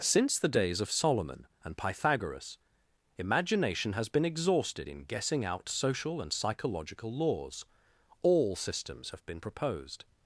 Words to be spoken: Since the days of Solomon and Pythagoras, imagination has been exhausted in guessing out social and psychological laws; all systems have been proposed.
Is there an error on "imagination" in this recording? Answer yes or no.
no